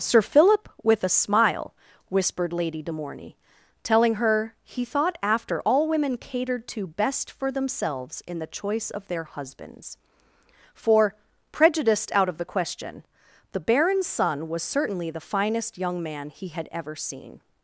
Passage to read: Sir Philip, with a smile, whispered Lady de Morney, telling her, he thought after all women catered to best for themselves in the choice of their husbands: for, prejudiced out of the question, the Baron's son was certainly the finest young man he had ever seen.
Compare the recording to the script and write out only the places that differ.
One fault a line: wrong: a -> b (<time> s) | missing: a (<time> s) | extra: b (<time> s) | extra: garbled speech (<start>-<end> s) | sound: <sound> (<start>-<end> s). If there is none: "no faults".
no faults